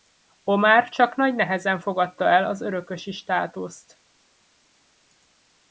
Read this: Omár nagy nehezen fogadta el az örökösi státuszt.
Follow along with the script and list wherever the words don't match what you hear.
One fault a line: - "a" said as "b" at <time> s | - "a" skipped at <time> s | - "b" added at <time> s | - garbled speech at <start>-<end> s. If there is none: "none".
- "csak" added at 0.9 s